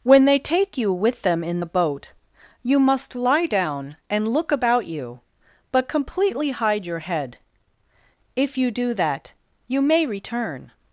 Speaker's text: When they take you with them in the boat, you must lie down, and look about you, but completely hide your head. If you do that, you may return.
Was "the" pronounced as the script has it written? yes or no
yes